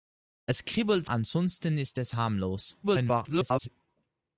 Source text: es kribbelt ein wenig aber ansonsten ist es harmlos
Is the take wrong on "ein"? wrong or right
wrong